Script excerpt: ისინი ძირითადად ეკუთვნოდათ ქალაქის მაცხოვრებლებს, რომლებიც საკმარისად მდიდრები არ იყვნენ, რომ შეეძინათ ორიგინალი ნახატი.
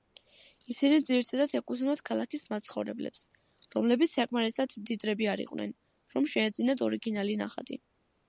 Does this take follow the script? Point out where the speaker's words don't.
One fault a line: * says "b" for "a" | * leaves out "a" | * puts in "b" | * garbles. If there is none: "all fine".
all fine